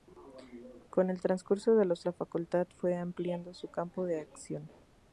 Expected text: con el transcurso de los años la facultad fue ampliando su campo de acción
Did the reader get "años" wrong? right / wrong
wrong